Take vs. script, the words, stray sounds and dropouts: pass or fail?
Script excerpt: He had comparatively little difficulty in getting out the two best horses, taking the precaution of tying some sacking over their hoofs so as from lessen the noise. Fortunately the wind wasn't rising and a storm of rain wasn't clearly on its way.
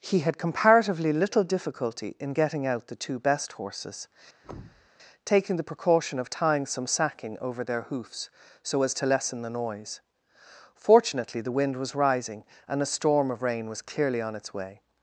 fail